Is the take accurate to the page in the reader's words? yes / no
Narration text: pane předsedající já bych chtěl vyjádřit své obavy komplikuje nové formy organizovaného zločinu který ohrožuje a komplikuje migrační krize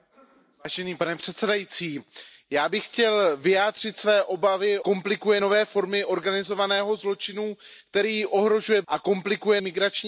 yes